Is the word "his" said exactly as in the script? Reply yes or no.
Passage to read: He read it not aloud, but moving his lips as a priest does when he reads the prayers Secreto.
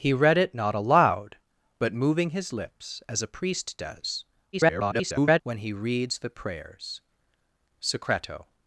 yes